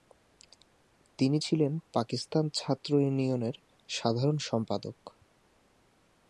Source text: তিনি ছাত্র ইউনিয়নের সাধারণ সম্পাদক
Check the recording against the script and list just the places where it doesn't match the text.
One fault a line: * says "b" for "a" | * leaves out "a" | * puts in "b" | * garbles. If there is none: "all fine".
* puts in "ছিলেন পাকিস্তান"